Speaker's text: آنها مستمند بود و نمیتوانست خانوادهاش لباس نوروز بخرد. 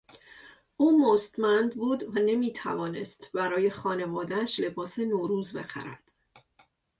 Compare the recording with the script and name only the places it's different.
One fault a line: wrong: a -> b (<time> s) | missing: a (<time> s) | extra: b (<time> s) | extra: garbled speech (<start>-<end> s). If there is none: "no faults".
wrong: آنها -> او (0.8 s)
extra: برای (3.3 s)